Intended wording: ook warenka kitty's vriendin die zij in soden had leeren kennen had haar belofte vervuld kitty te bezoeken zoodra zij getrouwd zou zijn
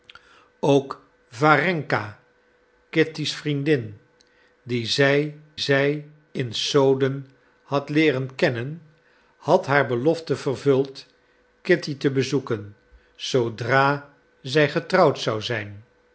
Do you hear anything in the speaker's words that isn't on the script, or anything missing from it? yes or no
yes